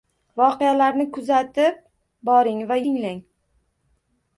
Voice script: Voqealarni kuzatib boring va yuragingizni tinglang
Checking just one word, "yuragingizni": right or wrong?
wrong